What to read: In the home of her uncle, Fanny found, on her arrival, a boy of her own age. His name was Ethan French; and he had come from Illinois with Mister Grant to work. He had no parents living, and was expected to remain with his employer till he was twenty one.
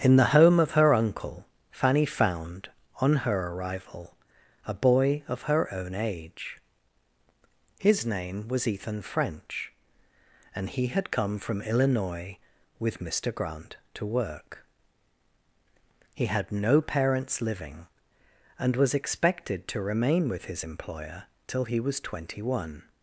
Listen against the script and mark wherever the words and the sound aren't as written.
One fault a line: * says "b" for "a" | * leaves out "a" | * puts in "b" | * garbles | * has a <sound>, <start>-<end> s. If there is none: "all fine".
all fine